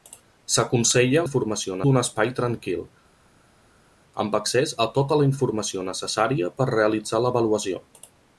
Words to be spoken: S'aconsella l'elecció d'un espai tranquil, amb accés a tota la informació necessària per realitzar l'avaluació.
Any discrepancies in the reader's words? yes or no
yes